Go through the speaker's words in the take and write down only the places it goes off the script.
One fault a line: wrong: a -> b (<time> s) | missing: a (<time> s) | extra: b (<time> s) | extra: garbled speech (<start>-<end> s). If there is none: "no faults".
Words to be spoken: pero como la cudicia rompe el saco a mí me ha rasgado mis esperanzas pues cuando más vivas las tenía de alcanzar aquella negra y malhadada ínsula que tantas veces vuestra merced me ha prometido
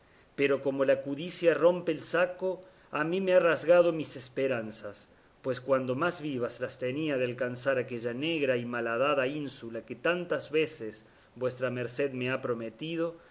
no faults